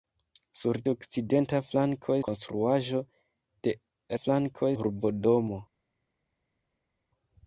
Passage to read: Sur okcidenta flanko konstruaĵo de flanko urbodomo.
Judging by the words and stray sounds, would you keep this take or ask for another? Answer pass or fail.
pass